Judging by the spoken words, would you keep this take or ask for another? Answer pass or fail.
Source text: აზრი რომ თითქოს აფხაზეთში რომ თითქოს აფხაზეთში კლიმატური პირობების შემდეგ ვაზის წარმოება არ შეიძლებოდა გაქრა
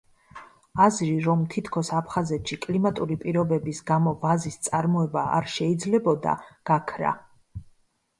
fail